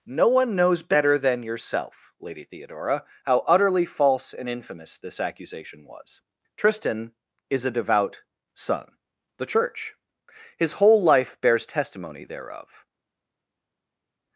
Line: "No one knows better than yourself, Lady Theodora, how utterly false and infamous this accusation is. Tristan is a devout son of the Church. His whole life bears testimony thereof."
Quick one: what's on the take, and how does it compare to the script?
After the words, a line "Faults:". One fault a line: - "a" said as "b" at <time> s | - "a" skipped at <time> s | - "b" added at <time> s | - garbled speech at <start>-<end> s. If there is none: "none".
"No one knows better than yourself, Lady Theodora, how utterly false and infamous this accusation was. Tristan is a devout son the Church. His whole life bears testimony thereof."
Faults:
- "is" said as "was" at 5.8 s
- "of" skipped at 9.0 s